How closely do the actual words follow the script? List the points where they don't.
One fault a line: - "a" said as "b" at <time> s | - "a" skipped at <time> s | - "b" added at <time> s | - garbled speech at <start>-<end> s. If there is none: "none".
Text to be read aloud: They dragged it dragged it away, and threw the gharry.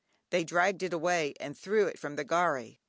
- "dragged it" skipped at 0.9 s
- "it from" added at 1.9 s